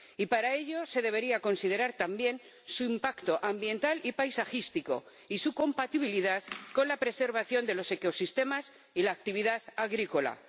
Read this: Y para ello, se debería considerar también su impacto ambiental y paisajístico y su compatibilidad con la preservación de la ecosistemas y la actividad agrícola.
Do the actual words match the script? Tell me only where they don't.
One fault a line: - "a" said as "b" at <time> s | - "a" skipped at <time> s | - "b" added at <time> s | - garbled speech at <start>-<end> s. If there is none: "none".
- "la" said as "los" at 7.7 s